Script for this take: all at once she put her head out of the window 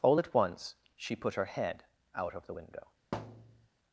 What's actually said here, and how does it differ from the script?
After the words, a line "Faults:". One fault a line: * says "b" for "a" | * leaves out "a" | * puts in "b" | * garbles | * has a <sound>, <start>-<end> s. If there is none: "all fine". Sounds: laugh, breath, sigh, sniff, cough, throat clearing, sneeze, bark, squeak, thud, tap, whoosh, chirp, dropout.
all at once she put her head out of the window
Faults:
* has a thud, 3.1-3.7 s